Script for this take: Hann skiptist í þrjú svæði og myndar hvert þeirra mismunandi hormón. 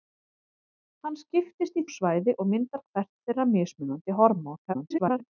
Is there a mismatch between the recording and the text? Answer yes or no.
yes